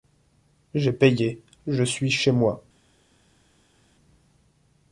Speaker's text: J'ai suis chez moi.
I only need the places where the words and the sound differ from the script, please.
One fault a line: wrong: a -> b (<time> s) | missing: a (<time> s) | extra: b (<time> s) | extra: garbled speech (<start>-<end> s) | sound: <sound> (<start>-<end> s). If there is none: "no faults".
extra: payé je (0.9 s)